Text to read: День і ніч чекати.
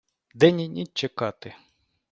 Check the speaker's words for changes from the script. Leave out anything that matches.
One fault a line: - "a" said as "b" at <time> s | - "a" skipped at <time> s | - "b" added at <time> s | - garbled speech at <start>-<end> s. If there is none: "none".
none